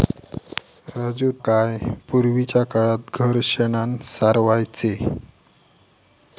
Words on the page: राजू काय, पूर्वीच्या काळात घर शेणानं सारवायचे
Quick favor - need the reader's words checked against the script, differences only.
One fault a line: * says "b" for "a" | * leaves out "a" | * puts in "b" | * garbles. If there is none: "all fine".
all fine